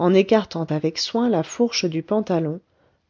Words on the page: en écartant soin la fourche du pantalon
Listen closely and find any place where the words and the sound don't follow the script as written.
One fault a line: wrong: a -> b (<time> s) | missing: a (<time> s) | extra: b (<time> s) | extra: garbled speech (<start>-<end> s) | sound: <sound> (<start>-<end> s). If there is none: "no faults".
extra: avec (0.7 s)